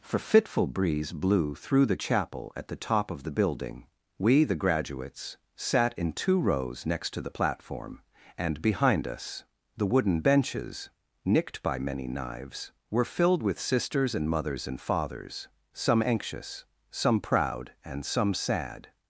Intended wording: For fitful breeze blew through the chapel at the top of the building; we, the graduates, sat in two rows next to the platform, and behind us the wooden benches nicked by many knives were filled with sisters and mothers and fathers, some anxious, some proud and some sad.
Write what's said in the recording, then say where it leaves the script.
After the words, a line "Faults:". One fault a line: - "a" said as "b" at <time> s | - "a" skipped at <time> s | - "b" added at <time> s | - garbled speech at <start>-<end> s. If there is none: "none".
For fitful breeze blew through the chapel at the top of the building; we, the graduates, sat in two rows next to the platform, and behind us the wooden benches nicked by many knives were filled with sisters and mothers and fathers, some anxious, some proud and some sad.
Faults:
none